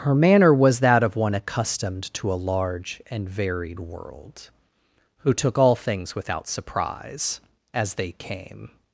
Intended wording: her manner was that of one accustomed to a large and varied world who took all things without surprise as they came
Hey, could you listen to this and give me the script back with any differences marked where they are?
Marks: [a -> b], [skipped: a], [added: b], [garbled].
her manner was that of one accustomed to a large and varied world who took all things without surprise as they came